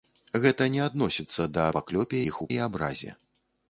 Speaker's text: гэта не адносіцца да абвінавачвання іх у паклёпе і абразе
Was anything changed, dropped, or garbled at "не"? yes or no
no